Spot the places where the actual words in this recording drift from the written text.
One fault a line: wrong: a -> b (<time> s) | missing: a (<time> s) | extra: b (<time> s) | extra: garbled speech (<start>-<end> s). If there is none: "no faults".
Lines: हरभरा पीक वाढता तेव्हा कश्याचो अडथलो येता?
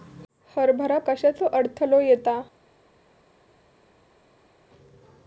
missing: पीक वाढता तेव्हा (1.0 s)